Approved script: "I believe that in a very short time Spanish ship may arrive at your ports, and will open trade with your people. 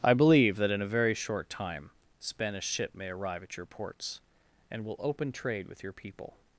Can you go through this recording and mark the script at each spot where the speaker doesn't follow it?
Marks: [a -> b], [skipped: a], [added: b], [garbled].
"I believe that in a very short time Spanish ship may arrive at your ports, and will open trade with your people.